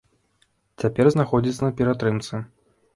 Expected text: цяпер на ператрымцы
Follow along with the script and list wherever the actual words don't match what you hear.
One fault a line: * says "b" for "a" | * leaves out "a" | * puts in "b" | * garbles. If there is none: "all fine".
* puts in "знаходзіцца"